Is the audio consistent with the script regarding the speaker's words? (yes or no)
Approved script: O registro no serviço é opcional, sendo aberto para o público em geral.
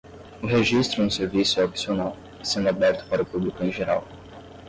yes